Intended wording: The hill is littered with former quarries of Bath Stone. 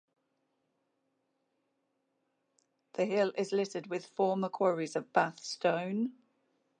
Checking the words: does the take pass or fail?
pass